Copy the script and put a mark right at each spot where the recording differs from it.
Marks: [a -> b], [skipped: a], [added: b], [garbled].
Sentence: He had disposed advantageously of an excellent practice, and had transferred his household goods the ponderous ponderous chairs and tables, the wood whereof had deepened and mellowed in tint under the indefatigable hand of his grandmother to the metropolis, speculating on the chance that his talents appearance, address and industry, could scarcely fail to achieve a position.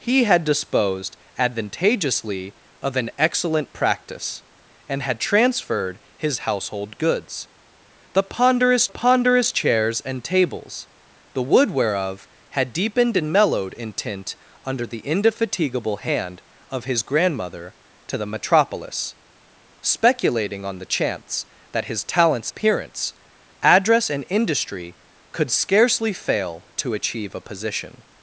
He had disposed advantageously of an excellent practice, and had transferred his household goods the ponderous ponderous chairs and tables, the wood whereof had deepened and mellowed in tint under the indefatigable hand of his grandmother to the metropolis, speculating on the chance that his talents appearance, address and industry, could scarcely fail to achieve a position.